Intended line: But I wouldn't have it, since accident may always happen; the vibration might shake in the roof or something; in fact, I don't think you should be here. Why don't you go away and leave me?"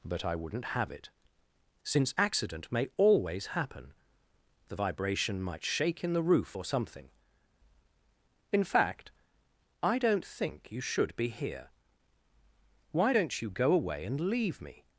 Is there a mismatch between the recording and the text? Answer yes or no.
no